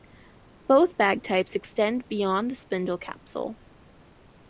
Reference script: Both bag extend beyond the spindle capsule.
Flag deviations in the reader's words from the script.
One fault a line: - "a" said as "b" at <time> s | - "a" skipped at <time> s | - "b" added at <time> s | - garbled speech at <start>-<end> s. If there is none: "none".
- "types" added at 1.2 s